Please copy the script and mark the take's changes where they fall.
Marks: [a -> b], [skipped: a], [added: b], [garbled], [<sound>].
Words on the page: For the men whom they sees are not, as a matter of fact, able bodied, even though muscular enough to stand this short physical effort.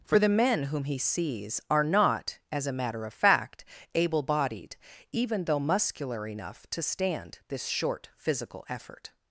For the men whom [they -> he] sees are not, as a matter of fact, able bodied, even though muscular enough to stand this short physical effort.